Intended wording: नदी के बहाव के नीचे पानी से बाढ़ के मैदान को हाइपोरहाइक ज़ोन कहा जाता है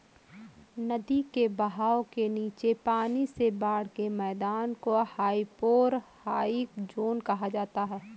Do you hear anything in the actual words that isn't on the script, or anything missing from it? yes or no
no